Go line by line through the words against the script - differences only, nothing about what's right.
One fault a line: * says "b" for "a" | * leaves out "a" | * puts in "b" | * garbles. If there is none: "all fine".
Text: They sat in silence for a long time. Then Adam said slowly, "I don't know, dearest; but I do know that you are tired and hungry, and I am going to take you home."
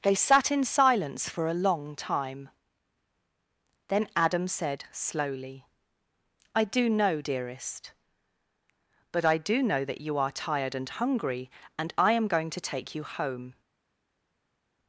* says "do" for "don't"